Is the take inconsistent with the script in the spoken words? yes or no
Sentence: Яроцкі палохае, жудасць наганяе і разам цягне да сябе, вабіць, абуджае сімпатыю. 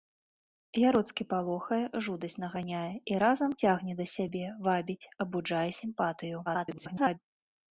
yes